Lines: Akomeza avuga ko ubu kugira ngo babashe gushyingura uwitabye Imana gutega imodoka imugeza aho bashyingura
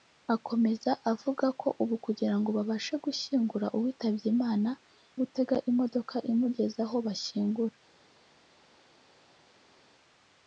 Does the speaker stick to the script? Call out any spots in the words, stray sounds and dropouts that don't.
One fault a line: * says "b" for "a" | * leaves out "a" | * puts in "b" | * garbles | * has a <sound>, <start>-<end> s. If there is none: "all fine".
all fine